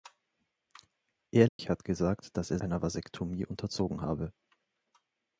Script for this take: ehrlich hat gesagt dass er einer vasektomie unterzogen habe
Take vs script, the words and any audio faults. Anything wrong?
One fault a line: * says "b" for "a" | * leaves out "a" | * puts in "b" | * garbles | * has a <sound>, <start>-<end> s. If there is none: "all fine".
* has a dropout, 1.5-1.6 s